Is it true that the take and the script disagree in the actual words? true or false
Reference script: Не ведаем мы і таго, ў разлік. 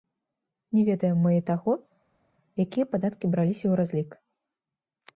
true